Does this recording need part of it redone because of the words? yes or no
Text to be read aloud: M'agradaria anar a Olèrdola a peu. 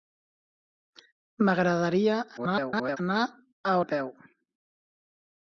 yes